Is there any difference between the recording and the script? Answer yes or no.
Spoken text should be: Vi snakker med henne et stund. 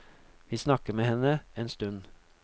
yes